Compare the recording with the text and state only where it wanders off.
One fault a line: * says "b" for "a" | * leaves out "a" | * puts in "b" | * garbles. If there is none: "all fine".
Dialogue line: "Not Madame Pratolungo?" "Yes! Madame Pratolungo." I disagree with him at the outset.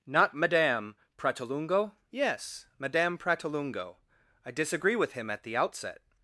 all fine